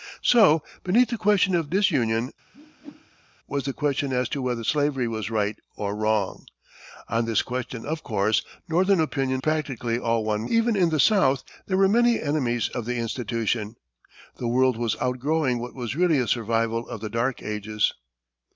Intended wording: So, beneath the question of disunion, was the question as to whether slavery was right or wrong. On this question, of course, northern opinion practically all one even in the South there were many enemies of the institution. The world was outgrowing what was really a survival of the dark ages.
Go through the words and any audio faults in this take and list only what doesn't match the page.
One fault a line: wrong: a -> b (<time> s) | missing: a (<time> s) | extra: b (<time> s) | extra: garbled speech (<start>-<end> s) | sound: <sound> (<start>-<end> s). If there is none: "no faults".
sound: whoosh (2.5-3.3 s)